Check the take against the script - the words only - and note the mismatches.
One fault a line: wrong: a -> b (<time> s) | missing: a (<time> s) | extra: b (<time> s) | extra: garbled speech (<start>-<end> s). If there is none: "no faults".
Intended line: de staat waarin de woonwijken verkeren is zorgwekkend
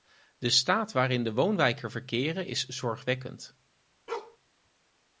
no faults